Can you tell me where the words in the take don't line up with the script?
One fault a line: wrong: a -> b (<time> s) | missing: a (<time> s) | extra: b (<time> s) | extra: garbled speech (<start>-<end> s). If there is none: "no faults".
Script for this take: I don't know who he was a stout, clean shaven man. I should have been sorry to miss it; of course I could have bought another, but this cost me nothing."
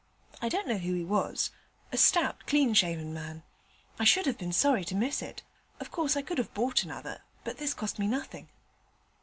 no faults